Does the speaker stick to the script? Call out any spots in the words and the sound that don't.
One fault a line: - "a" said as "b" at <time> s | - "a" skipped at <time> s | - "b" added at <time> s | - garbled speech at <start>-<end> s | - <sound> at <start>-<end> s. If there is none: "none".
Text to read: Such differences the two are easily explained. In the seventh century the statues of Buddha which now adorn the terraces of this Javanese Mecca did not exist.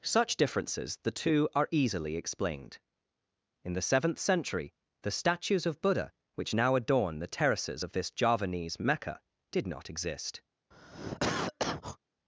- cough at 10.7-12.0 s